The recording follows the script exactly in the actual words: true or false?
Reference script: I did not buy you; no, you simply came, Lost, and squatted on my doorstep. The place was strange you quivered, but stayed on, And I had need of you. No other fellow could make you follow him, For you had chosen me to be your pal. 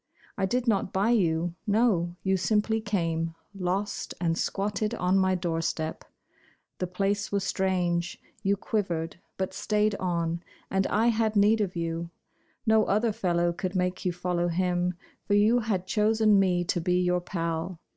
true